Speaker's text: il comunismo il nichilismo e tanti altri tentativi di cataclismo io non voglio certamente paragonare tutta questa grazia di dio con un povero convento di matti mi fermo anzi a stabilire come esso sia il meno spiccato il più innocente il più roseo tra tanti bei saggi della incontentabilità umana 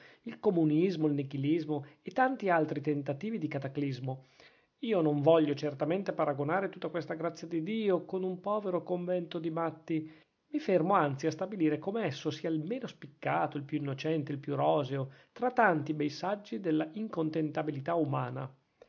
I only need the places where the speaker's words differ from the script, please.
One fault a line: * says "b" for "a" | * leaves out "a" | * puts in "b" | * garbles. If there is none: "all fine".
all fine